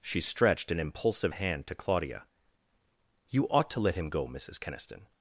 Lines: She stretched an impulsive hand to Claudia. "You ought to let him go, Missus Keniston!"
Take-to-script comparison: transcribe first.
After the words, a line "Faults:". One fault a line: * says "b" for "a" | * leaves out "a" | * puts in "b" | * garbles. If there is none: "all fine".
She stretched an impulsive hand to Claudia. "You ought to let him go, Missus Keniston!"
Faults:
all fine